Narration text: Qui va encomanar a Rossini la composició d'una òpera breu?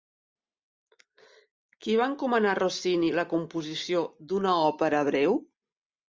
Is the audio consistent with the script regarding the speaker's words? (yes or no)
yes